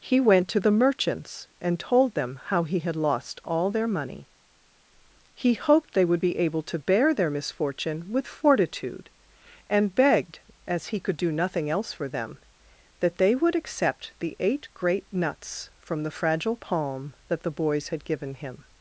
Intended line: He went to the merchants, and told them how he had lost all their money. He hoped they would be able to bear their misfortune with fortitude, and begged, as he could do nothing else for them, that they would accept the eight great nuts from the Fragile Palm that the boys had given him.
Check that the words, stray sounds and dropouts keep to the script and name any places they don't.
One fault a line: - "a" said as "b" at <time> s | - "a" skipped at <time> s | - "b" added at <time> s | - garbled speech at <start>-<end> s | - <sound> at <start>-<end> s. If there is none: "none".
none